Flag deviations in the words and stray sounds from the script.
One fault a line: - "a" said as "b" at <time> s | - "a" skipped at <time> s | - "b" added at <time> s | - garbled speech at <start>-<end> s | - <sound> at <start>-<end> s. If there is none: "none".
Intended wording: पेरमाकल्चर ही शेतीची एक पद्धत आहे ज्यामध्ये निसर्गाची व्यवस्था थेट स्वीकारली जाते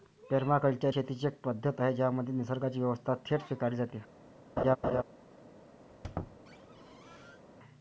- "ही" skipped at 0.9 s
- laugh at 4.6-5.0 s
- squeak at 5.9-7.4 s